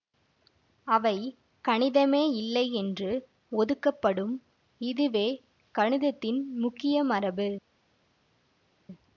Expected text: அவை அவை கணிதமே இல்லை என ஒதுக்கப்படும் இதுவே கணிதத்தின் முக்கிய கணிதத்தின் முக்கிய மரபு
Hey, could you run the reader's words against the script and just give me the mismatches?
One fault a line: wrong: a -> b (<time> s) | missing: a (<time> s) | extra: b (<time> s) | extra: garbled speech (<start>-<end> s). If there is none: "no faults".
missing: அவை (1.2 s)
wrong: என -> என்று (2.7 s)
missing: கணிதத்தின் முக்கிய (7.0 s)